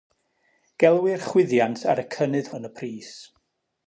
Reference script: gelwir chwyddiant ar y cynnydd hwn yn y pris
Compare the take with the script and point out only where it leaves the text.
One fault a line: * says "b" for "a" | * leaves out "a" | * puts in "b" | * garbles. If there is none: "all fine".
* leaves out "hwn"